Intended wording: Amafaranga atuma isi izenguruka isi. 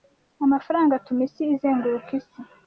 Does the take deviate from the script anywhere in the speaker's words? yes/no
no